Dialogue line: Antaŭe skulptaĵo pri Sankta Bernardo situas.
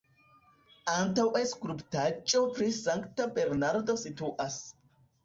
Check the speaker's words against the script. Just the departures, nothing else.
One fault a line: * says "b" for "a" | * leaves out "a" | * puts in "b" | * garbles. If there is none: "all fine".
all fine